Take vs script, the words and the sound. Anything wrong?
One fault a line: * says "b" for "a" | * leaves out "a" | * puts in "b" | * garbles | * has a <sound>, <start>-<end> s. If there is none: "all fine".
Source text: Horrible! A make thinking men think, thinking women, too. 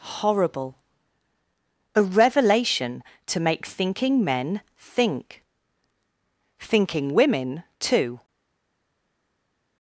* puts in "revelation to"